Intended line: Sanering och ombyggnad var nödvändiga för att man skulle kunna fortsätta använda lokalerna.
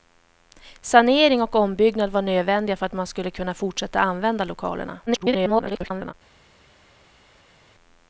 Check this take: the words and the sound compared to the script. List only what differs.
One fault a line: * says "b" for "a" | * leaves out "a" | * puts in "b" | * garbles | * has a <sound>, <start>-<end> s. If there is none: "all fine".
* garbles